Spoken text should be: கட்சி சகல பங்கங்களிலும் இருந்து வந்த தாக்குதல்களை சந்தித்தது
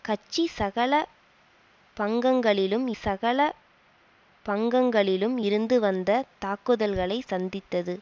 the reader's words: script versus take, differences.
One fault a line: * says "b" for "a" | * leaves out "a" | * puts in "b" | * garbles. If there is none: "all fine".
* puts in "சகல பங்கங்களிலும்"